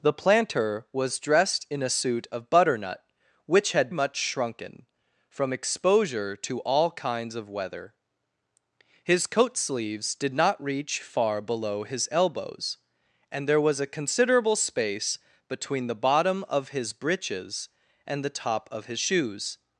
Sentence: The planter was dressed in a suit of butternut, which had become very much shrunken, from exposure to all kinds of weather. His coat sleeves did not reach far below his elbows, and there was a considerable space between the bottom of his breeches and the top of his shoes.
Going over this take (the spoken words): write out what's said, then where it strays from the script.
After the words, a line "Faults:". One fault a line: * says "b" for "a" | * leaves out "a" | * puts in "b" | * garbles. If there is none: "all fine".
The planter was dressed in a suit of butternut, which had much shrunken, from exposure to all kinds of weather. His coat sleeves did not reach far below his elbows, and there was a considerable space between the bottom of his breeches and the top of his shoes.
Faults:
* leaves out "become very"